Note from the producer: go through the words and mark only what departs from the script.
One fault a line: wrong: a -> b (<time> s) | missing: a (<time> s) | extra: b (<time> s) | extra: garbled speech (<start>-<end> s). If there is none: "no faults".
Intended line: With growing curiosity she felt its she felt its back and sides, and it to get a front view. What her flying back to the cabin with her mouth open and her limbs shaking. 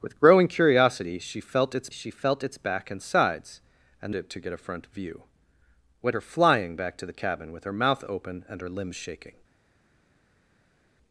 no faults